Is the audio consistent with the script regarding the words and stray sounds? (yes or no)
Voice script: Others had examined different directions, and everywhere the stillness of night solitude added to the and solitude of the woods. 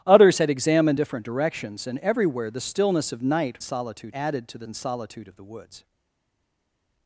yes